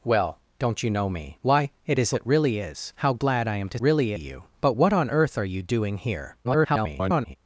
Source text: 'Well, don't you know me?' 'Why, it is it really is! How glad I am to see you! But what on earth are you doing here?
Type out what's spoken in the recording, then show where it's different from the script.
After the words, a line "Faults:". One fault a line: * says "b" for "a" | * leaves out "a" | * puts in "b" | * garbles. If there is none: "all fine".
'Well, don't you know me?' 'Why, it is it really is! How glad I am to really you! But what on earth are you doing here? [garbled]
Faults:
* says "really" for "see"
* garbles